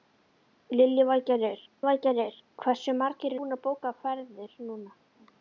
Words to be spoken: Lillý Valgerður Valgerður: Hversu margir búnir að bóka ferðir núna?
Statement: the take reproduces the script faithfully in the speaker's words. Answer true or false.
true